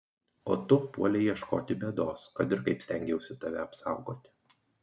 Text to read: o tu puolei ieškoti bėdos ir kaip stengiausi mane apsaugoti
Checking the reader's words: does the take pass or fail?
fail